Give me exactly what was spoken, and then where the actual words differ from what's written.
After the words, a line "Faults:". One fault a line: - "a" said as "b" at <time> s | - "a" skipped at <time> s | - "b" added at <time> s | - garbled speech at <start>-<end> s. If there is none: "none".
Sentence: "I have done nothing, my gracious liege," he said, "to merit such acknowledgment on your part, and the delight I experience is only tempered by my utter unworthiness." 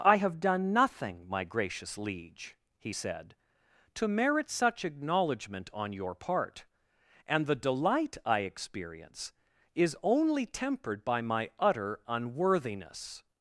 "I have done nothing, my gracious liege," he said, "to merit such acknowledgment on your part, and the delight I experience is only tempered by my utter unworthiness."
Faults:
none